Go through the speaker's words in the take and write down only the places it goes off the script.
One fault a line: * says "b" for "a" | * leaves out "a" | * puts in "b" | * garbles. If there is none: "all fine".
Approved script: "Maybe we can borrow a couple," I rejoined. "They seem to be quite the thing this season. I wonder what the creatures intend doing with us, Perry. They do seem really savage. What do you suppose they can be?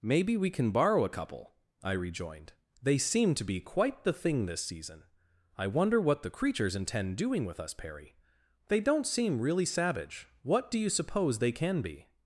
* says "don't" for "do"